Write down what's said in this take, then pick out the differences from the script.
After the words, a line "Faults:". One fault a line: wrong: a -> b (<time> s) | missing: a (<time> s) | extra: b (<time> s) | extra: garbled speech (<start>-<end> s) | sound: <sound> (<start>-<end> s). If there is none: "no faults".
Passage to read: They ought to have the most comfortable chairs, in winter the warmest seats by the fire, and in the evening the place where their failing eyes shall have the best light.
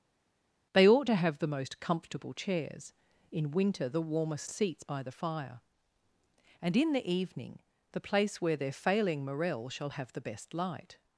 They ought to have the most comfortable chairs, in winter the warmest seats by the fire, and in the evening the place where their failing morel shall have the best light.
Faults:
wrong: eyes -> morel (9.3 s)